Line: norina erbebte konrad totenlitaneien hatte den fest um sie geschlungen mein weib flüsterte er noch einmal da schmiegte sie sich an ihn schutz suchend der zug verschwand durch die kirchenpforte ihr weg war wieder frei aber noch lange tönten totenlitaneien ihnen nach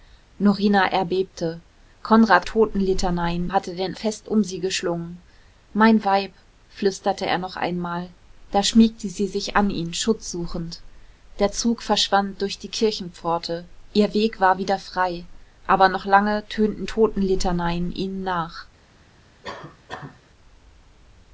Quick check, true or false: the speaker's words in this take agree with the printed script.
true